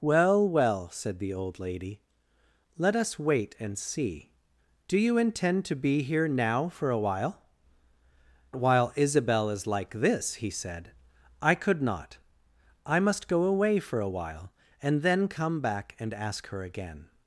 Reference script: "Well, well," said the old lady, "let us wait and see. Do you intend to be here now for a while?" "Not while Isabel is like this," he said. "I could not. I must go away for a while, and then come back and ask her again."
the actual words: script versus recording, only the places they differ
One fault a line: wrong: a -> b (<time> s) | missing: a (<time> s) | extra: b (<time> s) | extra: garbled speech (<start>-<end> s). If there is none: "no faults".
missing: Not (7.4 s)